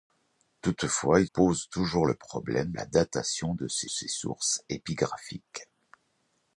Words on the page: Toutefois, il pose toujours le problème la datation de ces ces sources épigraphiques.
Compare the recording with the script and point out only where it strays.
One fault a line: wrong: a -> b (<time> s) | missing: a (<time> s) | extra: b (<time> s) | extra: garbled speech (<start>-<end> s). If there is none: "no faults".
no faults